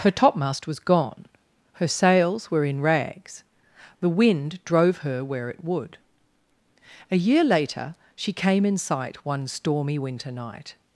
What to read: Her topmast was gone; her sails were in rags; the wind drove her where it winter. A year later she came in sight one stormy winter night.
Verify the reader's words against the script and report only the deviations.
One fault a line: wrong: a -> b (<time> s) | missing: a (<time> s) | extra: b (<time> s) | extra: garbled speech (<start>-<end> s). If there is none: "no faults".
wrong: winter -> would (5.6 s)